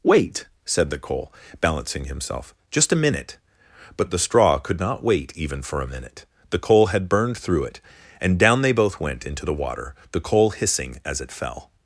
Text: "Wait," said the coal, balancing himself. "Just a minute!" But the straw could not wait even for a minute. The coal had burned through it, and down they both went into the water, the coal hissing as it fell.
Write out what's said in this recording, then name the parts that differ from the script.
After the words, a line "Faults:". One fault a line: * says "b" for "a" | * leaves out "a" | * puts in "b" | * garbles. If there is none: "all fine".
"Wait," said the coal, balancing himself. "Just a minute!" But the straw could not wait even for a minute. The coal had burned through it, and down they both went into the water, the coal hissing as it fell.
Faults:
all fine